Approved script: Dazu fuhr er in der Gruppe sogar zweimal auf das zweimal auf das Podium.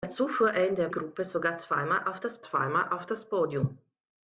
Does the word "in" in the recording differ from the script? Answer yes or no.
no